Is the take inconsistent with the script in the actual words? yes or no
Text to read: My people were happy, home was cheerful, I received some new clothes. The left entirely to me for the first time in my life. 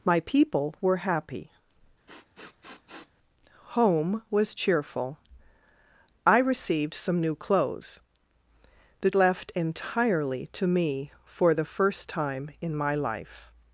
no